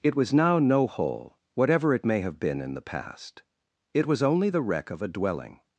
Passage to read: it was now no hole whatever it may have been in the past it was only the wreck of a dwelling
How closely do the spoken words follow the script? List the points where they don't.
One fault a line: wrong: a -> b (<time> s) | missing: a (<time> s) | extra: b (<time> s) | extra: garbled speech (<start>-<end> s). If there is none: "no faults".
no faults